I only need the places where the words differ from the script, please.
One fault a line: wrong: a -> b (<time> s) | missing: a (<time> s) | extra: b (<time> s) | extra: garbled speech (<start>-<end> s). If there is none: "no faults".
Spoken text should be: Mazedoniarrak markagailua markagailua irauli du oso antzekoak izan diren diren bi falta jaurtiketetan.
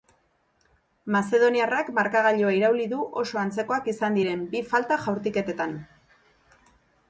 missing: markagailua (2.5 s)
missing: diren (4.5 s)